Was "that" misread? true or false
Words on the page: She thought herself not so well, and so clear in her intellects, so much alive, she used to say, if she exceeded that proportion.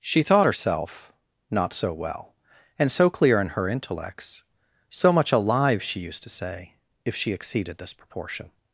true